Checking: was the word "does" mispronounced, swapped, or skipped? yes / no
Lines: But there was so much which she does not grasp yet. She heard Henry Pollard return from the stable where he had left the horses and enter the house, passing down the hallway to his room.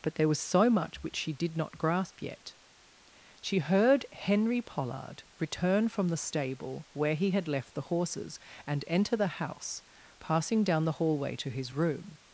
yes